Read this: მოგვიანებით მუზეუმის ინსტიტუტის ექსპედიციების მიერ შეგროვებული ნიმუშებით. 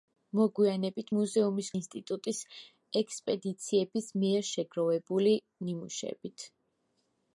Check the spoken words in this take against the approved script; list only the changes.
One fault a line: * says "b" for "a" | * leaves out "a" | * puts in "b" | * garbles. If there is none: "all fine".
all fine